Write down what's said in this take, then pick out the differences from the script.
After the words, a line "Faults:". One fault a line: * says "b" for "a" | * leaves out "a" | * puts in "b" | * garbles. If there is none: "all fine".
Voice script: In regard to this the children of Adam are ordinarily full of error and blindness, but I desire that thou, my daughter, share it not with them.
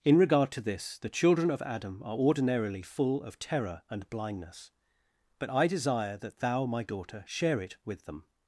In regard to this the children of Adam are ordinarily full of terror and blindness, but I desire that thou, my daughter, share it with them.
Faults:
* says "terror" for "error"
* leaves out "not"